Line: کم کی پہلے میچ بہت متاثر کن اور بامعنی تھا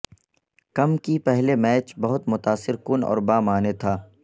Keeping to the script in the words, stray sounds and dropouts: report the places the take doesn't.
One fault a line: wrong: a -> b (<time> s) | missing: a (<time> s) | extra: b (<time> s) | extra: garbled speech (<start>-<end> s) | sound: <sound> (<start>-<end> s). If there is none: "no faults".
no faults